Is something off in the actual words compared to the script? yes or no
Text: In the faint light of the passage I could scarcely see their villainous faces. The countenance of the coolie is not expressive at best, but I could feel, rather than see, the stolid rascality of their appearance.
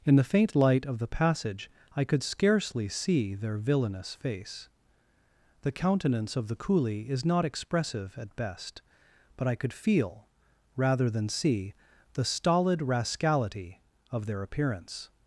yes